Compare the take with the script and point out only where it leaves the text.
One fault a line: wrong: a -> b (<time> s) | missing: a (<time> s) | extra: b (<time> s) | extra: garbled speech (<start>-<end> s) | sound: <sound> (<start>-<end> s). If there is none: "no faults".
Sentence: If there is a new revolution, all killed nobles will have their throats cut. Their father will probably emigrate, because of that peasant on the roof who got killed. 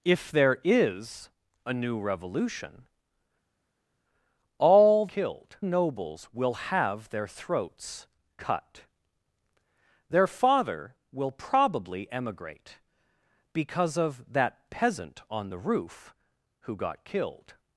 no faults